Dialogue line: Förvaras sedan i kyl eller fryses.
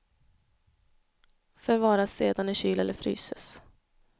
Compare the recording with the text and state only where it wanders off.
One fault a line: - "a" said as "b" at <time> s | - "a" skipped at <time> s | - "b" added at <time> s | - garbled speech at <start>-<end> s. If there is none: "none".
none